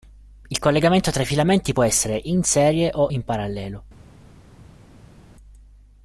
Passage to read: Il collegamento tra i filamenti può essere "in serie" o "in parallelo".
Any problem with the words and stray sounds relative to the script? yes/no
no